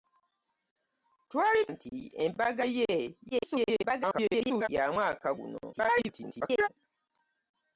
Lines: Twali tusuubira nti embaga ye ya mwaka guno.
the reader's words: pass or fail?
fail